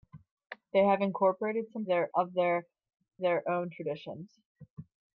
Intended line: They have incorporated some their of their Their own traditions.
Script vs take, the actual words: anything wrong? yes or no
no